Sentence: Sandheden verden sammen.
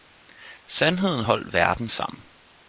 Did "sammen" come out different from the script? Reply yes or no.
no